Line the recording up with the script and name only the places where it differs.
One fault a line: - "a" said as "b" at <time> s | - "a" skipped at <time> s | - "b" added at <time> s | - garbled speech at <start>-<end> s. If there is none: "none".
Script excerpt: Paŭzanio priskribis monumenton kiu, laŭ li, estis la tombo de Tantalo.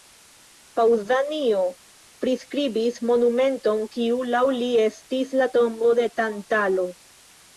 none